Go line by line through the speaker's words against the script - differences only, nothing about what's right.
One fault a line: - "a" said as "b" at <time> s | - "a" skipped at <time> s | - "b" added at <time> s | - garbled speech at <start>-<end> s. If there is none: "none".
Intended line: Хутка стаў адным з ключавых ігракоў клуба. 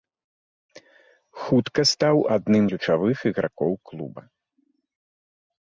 - "з" skipped at 2.6 s